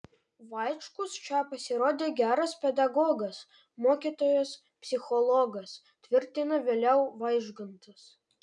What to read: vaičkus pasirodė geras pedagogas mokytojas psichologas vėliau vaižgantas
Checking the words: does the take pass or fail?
fail